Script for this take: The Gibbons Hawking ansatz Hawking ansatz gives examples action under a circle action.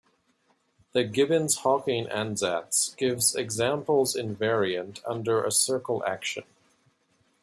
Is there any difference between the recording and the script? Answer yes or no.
yes